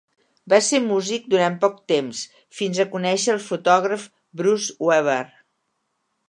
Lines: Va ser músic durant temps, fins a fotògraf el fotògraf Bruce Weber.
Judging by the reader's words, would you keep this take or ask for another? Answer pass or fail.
fail